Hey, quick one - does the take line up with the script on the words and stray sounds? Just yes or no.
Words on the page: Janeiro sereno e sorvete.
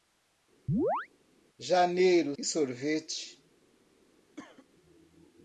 no